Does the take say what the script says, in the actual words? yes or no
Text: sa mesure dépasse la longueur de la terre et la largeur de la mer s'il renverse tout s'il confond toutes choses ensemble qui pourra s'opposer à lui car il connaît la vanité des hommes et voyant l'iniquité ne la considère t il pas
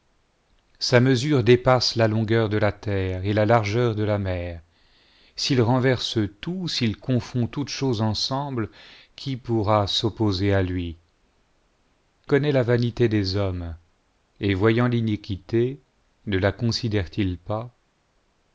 no